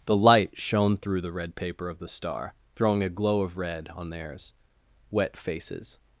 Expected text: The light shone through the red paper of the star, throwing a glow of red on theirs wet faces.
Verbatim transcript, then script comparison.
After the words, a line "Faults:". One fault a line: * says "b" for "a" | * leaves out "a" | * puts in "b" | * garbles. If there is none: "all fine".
The light shone through the red paper of the star, throwing a glow of red on theirs wet faces.
Faults:
all fine